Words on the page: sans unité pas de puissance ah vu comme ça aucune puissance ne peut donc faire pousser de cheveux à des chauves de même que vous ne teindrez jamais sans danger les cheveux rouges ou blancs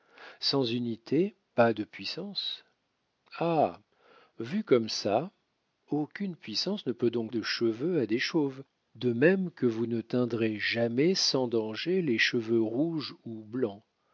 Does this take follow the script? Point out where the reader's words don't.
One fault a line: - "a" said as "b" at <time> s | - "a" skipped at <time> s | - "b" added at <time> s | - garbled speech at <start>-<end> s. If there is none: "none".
- "faire pousser" skipped at 7.3 s